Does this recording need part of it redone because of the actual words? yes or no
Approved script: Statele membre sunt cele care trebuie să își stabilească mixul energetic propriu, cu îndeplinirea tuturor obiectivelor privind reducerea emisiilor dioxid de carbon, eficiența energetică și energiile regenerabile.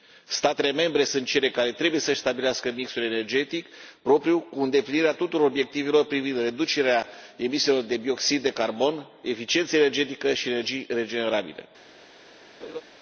yes